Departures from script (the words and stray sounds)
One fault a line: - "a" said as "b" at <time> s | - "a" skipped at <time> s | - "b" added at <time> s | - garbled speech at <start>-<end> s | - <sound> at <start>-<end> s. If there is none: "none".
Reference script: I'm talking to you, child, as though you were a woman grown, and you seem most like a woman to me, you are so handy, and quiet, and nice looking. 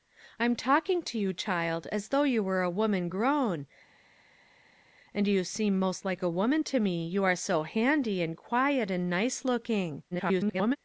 - garbled speech at 10.1-10.8 s